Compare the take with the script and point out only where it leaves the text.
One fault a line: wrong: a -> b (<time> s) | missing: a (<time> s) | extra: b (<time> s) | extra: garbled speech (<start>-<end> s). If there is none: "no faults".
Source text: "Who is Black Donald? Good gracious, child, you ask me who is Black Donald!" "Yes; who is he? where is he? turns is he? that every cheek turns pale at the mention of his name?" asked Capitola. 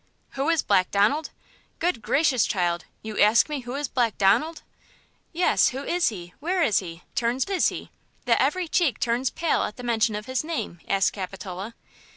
no faults